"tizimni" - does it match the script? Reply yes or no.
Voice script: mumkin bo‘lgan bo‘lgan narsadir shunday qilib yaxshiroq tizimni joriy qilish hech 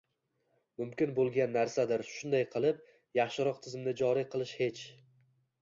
yes